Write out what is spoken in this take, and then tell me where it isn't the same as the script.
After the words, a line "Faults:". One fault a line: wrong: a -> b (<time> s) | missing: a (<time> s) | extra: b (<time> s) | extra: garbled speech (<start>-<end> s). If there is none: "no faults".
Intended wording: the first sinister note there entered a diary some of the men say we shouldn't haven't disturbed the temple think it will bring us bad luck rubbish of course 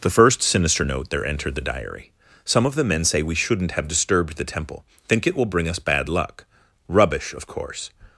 the first sinister note there entered the diary some of the men say we shouldn't have disturbed the temple think it will bring us bad luck rubbish of course
Faults:
wrong: a -> the (1.6 s)
wrong: haven't -> have (3.7 s)